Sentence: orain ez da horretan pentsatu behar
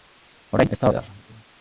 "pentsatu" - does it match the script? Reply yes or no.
no